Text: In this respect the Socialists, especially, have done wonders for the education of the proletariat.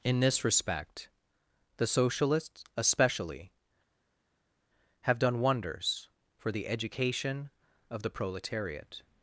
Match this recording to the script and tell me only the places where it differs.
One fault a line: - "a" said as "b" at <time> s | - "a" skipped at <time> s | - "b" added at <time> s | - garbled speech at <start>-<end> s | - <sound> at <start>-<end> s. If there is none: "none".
none